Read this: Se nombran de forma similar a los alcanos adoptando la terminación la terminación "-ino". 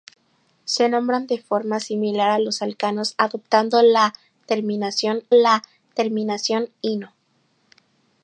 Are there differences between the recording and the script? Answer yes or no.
no